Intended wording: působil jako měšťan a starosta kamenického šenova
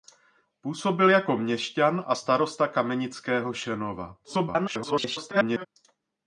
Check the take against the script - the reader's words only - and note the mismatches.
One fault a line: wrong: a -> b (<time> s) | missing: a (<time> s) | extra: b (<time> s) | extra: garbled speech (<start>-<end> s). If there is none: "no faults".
extra: garbled speech (4.2-5.7 s)